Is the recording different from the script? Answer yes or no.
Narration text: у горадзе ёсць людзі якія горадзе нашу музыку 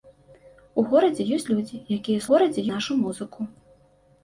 no